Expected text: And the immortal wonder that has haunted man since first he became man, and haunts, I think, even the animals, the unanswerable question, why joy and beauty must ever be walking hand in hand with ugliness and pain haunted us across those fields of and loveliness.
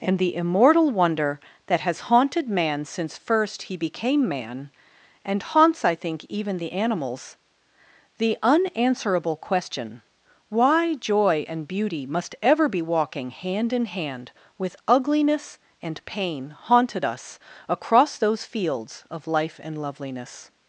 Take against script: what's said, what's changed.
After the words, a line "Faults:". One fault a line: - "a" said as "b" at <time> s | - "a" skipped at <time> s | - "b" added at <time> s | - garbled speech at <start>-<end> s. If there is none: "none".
And the immortal wonder that has haunted man since first he became man, and haunts, I think, even the animals, the unanswerable question, why joy and beauty must ever be walking hand in hand with ugliness and pain haunted us across those fields of life and loveliness.
Faults:
- "life" added at 19.3 s